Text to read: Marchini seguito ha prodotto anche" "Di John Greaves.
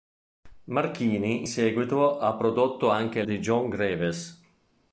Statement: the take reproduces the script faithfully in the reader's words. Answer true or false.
true